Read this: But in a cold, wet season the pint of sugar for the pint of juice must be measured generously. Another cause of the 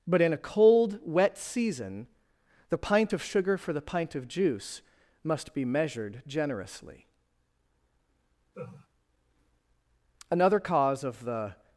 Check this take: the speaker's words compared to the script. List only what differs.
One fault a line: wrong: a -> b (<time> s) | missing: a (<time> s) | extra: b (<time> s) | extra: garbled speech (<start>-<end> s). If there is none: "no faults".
no faults